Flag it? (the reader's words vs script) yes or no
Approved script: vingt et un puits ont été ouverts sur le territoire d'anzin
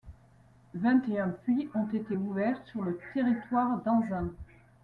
no